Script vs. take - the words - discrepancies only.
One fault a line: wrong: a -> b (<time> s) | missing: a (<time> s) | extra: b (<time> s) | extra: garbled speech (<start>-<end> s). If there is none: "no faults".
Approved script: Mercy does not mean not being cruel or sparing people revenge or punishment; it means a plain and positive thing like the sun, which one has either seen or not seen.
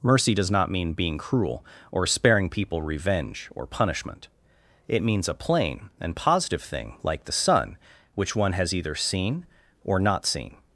missing: not (0.9 s)